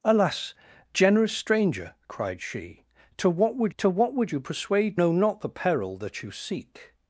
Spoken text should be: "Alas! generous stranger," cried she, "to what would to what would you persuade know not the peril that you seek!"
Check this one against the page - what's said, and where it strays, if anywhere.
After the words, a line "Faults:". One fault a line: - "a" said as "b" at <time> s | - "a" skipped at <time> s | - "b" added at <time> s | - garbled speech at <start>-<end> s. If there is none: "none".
"Alas! generous stranger," cried she, "to what would to what would you persuade know not the peril that you seek!"
Faults:
none